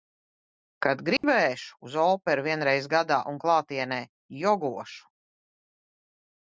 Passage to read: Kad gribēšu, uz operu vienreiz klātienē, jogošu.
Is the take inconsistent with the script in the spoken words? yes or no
yes